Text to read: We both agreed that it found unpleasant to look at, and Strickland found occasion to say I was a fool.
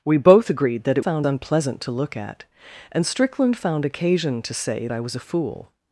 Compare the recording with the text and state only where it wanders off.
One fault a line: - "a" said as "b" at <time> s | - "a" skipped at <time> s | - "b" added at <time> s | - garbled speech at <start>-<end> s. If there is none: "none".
none